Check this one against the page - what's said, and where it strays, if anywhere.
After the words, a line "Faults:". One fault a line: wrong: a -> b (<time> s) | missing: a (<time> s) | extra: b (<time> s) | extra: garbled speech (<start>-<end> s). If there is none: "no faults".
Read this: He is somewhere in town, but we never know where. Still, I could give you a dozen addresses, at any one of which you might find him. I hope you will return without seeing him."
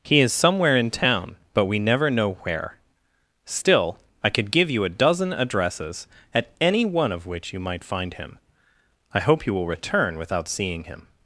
He is somewhere in town, but we never know where. Still, I could give you a dozen addresses, at any one of which you might find him. I hope you will return without seeing him."
Faults:
no faults